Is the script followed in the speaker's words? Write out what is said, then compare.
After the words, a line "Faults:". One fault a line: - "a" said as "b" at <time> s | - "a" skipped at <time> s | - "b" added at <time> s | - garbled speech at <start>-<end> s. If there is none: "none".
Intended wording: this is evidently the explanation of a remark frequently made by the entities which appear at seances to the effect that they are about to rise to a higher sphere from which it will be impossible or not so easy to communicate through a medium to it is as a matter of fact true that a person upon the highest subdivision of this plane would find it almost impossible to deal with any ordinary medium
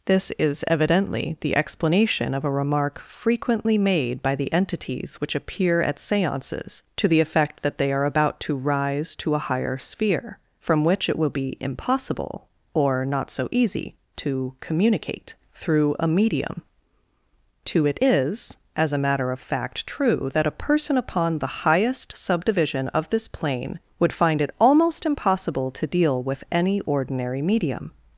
this is evidently the explanation of a remark frequently made by the entities which appear at seances to the effect that they are about to rise to a higher sphere from which it will be impossible or not so easy to communicate through a medium to it is as a matter of fact true that a person upon the highest subdivision of this plane would find it almost impossible to deal with any ordinary medium
Faults:
none